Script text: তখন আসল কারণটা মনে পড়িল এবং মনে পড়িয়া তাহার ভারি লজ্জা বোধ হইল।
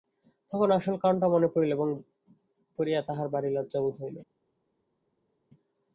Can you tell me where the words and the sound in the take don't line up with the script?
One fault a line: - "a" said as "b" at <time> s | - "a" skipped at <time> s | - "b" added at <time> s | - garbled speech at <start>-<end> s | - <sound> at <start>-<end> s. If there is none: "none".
- "মনে" skipped at 1.9 s